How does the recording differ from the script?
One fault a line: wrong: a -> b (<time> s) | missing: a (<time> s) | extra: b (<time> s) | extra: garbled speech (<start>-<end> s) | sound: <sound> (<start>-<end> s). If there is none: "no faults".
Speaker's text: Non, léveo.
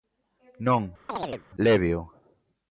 sound: chirp (1.1-1.5 s)